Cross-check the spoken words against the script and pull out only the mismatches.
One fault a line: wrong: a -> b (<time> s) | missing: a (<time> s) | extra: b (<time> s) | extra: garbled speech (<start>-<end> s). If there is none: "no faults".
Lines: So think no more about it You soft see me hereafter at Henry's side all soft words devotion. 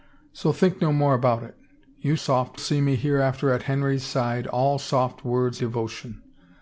no faults